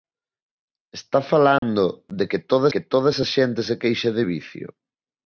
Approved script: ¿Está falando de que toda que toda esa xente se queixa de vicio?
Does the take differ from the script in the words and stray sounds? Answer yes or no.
yes